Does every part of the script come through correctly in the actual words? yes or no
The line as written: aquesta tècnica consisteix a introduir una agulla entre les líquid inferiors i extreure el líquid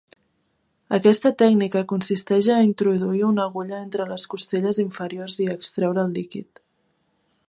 no